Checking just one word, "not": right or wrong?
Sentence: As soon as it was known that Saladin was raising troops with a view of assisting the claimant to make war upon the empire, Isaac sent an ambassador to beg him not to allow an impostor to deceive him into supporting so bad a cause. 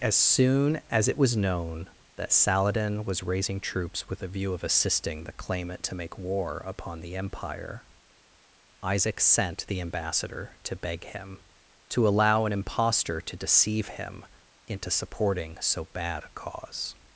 wrong